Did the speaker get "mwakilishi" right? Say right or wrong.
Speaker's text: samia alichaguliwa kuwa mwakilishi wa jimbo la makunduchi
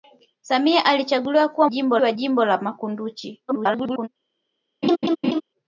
wrong